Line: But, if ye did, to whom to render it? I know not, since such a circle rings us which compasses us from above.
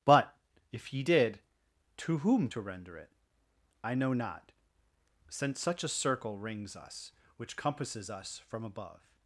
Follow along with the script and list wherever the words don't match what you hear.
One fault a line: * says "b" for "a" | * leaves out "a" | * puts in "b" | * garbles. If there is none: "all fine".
all fine